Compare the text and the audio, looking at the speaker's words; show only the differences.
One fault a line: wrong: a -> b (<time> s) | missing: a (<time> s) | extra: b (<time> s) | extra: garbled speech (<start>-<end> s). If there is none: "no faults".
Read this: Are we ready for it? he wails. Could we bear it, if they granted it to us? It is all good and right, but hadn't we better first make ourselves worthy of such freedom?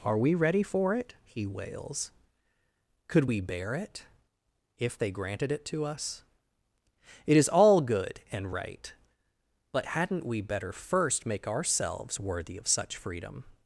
no faults